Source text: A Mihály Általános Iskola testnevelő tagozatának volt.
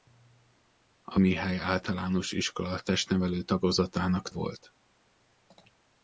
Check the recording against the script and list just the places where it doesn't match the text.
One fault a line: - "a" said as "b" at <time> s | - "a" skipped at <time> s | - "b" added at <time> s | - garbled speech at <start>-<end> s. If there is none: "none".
none